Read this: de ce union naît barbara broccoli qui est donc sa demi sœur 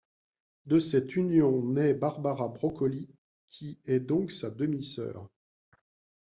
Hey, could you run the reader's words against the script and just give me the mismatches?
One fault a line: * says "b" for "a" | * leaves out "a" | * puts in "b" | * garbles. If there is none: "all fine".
* says "cette" for "ce"